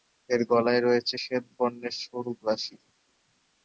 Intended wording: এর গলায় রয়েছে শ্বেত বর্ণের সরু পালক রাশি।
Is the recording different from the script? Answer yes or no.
yes